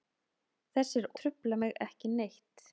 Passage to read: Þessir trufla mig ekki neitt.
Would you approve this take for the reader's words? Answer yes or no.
yes